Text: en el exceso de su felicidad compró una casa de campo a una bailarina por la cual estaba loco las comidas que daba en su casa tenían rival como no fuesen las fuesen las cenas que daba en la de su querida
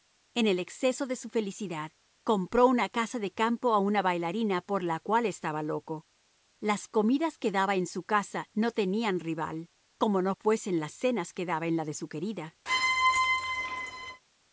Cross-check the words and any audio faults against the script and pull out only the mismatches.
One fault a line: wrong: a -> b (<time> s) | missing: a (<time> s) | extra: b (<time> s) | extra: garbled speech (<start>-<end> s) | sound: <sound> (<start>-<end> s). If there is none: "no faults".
extra: no (8.5 s)
missing: fuesen las (10.9 s)
sound: squeak (12.7-14.2 s)